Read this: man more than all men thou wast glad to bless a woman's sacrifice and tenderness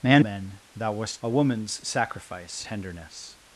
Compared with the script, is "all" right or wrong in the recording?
wrong